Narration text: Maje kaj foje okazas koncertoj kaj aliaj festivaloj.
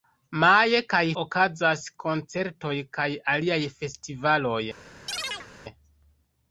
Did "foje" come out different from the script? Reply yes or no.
yes